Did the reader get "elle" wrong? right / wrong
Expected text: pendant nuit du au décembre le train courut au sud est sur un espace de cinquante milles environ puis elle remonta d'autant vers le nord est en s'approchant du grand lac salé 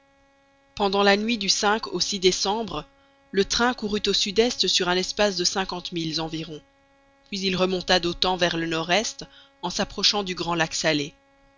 wrong